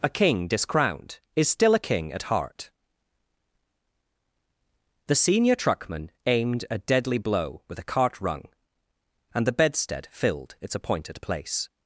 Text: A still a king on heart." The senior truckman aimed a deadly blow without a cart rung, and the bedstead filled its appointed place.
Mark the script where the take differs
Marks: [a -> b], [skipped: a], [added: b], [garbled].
A [added: king discrowned is] still a king [on -> at] heart." The senior truckman aimed a deadly blow [without -> with] a cart rung, and the bedstead filled its appointed place.